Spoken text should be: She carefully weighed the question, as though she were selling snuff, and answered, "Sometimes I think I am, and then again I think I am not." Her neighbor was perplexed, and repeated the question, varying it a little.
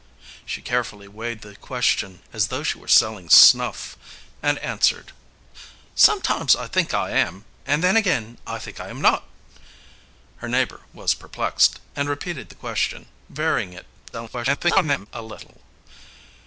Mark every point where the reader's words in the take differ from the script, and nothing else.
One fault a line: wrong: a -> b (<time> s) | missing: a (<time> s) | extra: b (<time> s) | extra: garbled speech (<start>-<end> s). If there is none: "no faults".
extra: garbled speech (14.1-15.1 s)